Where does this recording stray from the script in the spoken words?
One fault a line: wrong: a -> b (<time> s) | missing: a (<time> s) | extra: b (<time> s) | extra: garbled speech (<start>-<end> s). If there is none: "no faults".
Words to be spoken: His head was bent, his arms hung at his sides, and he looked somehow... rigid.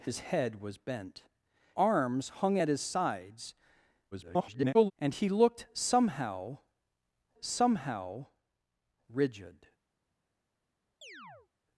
missing: his (1.2 s)
extra: garbled speech (4.1-4.9 s)
extra: somehow (7.4 s)